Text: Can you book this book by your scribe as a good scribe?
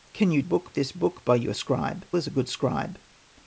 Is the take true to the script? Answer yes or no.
yes